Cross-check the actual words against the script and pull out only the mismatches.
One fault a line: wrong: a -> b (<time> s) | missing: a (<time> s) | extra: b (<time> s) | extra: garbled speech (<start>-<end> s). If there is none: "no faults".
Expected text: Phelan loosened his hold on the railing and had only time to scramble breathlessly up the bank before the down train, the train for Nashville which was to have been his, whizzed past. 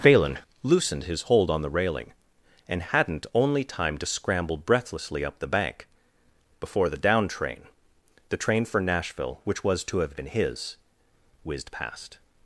wrong: had -> hadn't (2.8 s)